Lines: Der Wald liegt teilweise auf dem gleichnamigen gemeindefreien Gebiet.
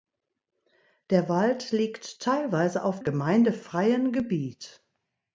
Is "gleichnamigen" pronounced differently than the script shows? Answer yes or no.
yes